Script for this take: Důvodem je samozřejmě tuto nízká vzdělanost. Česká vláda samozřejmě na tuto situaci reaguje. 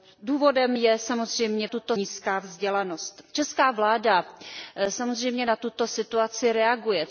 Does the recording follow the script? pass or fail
pass